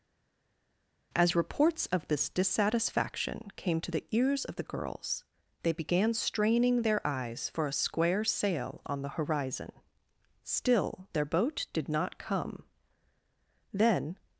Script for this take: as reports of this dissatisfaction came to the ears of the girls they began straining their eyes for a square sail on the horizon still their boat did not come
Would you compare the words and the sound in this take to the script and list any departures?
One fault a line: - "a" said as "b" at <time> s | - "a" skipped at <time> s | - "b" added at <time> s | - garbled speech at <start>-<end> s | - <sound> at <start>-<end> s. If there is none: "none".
- "then" added at 13.7 s